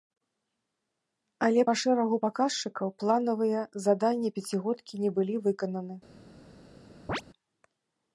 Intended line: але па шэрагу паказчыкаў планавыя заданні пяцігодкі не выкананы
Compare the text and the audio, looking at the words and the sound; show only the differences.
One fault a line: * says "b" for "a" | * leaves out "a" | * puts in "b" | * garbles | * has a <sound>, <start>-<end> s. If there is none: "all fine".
* puts in "былі"
* has a chirp, 7.1-7.2 s